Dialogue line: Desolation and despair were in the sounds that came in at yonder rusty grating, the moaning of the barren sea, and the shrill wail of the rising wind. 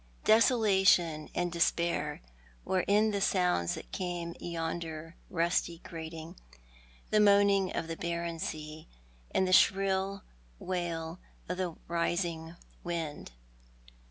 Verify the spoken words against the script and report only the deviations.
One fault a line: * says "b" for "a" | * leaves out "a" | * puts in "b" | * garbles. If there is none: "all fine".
* leaves out "in at"